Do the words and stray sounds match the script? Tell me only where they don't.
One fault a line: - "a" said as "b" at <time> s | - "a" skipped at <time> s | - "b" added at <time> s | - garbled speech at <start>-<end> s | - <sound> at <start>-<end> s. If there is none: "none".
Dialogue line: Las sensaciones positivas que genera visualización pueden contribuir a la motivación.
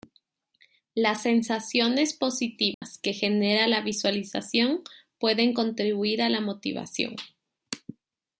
- dropout at 2.7-2.8 s
- "la" added at 3.7 s